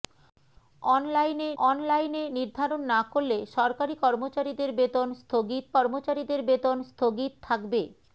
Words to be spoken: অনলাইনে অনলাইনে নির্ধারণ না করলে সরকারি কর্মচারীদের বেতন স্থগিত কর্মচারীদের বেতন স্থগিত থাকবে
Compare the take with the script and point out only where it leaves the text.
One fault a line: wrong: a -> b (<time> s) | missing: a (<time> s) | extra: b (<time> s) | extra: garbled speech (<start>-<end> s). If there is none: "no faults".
no faults